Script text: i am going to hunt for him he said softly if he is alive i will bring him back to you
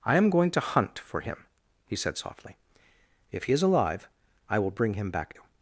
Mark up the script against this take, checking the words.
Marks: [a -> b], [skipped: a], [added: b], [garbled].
i am going to hunt for him he said softly if he is alive i will bring him back [skipped: to] you